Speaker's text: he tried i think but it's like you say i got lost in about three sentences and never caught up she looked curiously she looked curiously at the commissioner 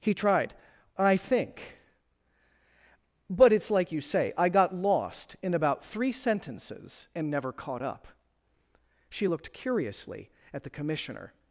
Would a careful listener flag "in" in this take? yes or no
no